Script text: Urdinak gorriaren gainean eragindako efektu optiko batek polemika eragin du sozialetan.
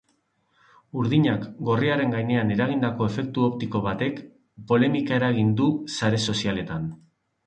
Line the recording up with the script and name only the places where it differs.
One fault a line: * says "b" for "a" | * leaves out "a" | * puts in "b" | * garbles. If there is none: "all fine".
* puts in "sare"